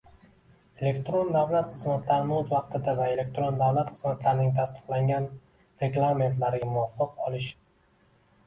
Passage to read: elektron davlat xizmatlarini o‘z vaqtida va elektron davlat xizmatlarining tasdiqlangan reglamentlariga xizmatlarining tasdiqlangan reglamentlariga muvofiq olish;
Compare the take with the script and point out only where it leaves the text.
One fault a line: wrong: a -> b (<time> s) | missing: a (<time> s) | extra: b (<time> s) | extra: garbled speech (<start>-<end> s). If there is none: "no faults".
missing: xizmatlarining tasdiqlangan reglamentlariga (6.7 s)